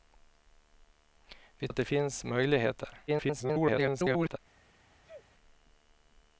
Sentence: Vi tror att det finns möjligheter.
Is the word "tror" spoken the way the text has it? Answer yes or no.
no